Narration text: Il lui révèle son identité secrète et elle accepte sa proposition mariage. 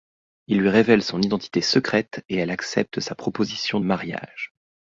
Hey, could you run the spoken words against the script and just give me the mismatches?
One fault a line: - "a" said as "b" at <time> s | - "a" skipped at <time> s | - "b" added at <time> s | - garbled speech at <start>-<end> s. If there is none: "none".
none